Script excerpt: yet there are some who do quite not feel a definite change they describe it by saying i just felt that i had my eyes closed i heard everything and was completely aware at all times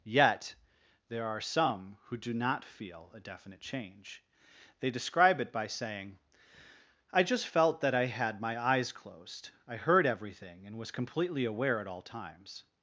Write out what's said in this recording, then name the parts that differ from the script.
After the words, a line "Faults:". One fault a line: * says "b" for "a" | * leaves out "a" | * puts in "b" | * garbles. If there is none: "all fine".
yet there are some who do not feel a definite change they describe it by saying i just felt that i had my eyes closed i heard everything and was completely aware at all times
Faults:
* leaves out "quite"